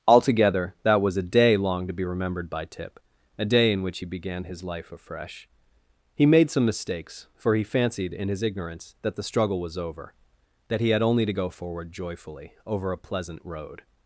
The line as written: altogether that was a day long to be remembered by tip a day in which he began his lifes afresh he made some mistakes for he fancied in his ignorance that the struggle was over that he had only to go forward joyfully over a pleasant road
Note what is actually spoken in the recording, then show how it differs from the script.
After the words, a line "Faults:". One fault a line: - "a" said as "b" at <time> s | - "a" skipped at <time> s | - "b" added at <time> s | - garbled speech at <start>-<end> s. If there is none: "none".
altogether that was a day long to be remembered by tip a day in which he began his life afresh he made some mistakes for he fancied in his ignorance that the struggle was over that he had only to go forward joyfully over a pleasant road
Faults:
- "lifes" said as "life" at 4.6 s